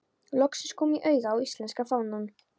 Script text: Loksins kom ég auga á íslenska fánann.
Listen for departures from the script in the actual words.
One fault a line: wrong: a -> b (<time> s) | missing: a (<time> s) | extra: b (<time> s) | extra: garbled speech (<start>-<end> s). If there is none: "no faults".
no faults